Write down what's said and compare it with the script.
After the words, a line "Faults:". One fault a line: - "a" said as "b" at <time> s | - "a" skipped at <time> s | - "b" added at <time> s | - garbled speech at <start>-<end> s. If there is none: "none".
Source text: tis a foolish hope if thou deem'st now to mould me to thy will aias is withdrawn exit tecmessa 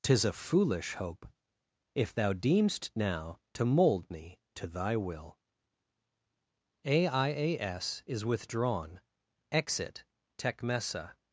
tis a foolish hope if thou deem'st now to mould me to thy will aias is withdrawn exit tecmessa
Faults:
none